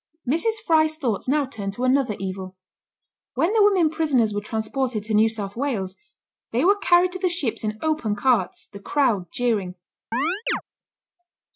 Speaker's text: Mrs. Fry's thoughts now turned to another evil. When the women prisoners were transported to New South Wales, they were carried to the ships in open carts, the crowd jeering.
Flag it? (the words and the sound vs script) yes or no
yes